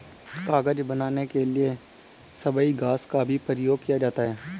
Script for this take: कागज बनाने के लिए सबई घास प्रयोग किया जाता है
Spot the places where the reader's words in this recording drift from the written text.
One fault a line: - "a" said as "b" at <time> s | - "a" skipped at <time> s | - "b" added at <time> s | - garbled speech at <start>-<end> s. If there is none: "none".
- "का भी" added at 3.0 s